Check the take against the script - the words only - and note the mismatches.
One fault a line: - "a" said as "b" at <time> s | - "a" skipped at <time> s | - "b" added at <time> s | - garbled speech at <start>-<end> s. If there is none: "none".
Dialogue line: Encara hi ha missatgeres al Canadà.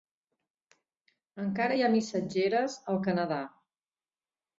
none